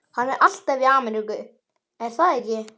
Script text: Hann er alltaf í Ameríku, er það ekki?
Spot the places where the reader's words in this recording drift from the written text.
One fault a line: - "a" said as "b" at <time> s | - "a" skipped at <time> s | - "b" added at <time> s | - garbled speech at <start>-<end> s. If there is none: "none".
none